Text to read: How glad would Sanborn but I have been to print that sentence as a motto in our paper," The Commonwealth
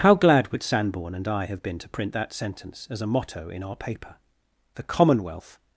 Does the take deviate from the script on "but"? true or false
true